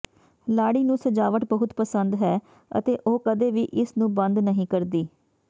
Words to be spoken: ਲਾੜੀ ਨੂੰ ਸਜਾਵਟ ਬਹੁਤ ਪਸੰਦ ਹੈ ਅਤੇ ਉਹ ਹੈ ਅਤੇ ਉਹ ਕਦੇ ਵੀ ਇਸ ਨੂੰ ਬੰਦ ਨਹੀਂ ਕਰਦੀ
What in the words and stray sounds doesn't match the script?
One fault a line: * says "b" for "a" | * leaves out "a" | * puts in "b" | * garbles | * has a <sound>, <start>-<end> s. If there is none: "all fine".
* leaves out "ਹੈ ਅਤੇ ਉਹ"